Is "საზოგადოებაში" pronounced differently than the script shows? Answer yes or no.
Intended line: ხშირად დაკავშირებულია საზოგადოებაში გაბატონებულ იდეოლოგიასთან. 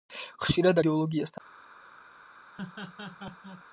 yes